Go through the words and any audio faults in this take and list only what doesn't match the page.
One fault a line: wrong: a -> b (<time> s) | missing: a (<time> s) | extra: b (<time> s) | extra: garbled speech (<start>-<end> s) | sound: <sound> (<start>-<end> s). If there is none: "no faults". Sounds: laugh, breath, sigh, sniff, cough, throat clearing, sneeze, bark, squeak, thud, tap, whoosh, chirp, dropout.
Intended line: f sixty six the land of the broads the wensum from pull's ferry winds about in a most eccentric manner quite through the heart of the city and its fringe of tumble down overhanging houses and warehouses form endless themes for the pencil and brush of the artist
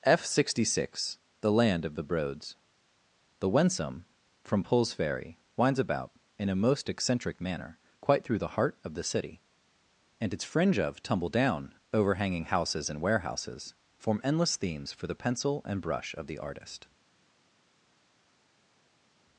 no faults